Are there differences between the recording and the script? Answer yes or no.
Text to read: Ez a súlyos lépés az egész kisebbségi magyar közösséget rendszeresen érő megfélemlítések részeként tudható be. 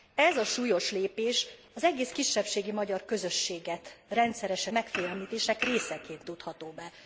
yes